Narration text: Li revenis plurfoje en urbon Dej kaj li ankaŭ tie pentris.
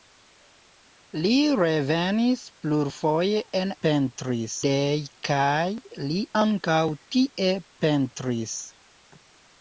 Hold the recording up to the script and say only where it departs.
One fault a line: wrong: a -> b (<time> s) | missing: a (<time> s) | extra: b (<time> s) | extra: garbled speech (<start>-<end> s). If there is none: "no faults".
wrong: urbon -> pentris (3.9 s)